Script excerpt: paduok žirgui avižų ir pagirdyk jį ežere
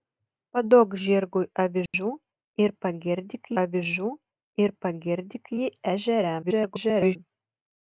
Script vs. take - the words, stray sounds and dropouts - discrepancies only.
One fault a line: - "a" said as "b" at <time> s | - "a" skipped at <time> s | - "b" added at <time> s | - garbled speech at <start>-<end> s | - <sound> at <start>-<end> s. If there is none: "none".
- dropout at 1.9-1.9 s
- "avižų ir pagirdyk" added at 3.6 s
- garbled speech at 6.4-7.2 s